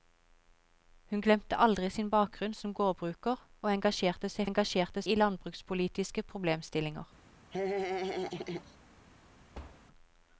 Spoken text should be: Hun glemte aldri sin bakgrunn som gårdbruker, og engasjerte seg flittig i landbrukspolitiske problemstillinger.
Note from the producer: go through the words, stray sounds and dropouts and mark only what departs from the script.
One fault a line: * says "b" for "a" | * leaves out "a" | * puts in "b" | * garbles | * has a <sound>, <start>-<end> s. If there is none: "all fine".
* says "engasjerte" for "flittig"
* has a laugh, 7.5-8.8 s
* has a thud, 9.5-9.8 s